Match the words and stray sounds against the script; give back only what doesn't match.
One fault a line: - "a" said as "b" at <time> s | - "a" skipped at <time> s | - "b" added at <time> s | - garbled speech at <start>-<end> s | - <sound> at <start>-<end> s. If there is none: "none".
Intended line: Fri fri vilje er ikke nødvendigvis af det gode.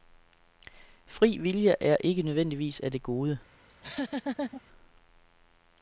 - "fri" skipped at 1.4 s
- laugh at 3.7-4.6 s